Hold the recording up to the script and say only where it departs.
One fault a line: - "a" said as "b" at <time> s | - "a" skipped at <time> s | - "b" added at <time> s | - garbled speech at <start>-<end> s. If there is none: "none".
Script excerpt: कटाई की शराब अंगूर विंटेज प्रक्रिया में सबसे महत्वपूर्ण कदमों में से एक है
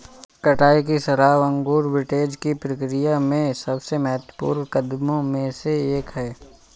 - "की" added at 2.4 s